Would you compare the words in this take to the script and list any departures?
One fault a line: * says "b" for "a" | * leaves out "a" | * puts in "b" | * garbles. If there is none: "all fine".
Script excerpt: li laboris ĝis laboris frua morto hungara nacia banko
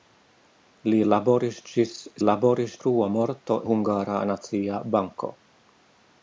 all fine